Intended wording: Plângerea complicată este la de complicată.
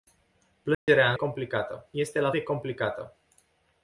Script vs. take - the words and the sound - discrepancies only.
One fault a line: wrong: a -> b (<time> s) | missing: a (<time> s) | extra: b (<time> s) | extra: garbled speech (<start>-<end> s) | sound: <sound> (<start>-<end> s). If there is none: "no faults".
sound: dropout (0.7-0.9 s)